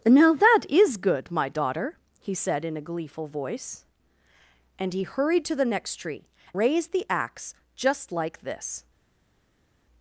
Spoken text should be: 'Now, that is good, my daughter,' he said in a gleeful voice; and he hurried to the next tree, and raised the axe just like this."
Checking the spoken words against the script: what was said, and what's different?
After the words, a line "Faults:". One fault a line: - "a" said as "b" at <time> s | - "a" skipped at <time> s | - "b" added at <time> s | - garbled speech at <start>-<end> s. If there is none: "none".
'Now, that is good, my daughter,' he said in a gleeful voice; and he hurried to the next tree, raised the axe just like this."
Faults:
- "and" skipped at 6.3 s